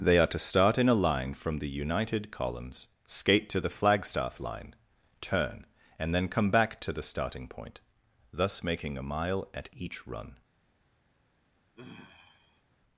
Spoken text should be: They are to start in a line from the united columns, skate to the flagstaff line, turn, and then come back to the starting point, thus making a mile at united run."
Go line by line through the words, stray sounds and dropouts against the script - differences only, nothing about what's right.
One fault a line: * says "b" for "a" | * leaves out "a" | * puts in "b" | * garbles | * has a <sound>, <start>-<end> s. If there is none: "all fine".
* says "each" for "united"
* has a sigh, 11.8-12.6 s